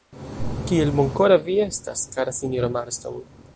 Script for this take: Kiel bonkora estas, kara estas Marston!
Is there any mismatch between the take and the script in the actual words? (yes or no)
yes